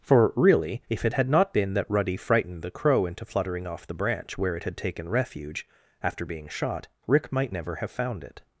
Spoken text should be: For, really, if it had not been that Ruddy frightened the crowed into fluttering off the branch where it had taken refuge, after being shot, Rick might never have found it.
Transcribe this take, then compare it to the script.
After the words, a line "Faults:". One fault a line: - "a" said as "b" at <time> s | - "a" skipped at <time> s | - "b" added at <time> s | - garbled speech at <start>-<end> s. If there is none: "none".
For, really, if it had not been that Ruddy frightened the crow into fluttering off the branch where it had taken refuge, after being shot, Rick might never have found it.
Faults:
- "crowed" said as "crow" at 2.7 s